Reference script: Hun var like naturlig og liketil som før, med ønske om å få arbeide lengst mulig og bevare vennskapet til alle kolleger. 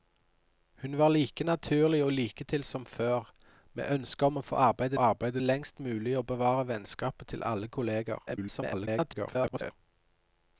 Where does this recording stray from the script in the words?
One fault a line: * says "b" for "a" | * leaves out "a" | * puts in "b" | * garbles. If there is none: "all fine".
* puts in "arbeide"
* garbles